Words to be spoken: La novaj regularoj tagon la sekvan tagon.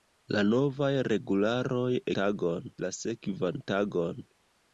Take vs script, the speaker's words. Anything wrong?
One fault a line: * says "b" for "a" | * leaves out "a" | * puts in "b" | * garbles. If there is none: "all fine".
all fine